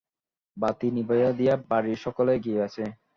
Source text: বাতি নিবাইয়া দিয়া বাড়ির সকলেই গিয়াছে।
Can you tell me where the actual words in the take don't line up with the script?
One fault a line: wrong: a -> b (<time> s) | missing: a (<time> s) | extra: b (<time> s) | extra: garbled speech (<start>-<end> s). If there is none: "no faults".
no faults